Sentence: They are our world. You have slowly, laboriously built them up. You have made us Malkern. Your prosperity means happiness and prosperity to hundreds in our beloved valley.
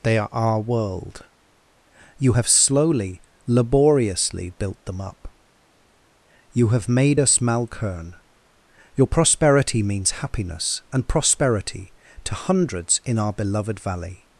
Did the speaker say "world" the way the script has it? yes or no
yes